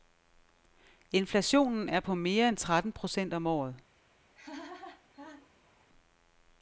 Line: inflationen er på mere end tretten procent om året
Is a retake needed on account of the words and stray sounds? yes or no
yes